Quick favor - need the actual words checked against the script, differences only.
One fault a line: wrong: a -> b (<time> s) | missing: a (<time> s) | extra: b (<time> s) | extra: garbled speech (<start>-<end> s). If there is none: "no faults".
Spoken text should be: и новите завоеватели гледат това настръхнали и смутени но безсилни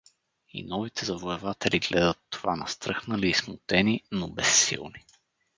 no faults